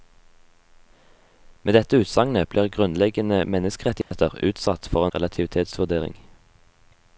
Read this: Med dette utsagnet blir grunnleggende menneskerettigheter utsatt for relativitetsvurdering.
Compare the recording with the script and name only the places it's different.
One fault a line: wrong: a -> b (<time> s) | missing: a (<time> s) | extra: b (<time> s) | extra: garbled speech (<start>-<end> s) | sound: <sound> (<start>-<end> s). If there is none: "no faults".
sound: dropout (4.0-4.1 s)